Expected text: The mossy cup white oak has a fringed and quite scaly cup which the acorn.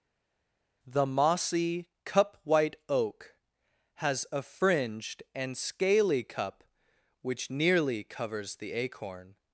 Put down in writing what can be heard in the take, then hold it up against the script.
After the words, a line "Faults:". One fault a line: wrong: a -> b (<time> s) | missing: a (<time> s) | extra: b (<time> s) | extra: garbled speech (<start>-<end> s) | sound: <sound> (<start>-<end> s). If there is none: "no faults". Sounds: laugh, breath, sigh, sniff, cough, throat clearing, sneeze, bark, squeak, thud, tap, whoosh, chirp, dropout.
The mossy cup white oak has a fringed and scaly cup which nearly covers the acorn.
Faults:
missing: quite (5.6 s)
extra: nearly covers (7.5 s)